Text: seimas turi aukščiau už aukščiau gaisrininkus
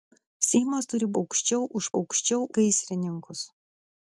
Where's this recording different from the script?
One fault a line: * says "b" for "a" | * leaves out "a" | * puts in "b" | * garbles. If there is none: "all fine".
all fine